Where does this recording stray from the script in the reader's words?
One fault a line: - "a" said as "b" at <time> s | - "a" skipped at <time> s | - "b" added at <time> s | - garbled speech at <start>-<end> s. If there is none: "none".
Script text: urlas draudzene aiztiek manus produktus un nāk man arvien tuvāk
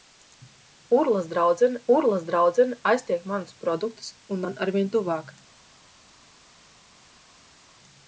- "urlas draudzene" added at 2.0 s
- "nāk" skipped at 4.4 s